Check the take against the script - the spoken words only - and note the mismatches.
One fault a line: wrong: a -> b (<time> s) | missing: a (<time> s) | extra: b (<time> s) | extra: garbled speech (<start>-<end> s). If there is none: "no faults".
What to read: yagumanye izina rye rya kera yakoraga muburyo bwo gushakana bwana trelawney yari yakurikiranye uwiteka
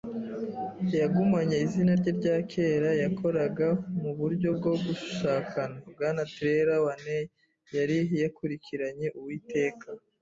no faults